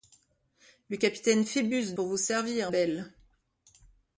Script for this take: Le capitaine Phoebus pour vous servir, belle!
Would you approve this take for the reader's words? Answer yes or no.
yes